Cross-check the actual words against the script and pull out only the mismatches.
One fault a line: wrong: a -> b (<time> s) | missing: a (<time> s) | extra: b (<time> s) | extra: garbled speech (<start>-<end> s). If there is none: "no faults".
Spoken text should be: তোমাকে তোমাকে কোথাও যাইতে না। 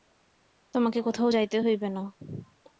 missing: তোমাকে (1.0 s)
extra: হইবে (1.6 s)